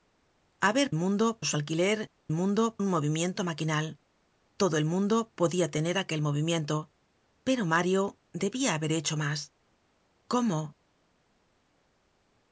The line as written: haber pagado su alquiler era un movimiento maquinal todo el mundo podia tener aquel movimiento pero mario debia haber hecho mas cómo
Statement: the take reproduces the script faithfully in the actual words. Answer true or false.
false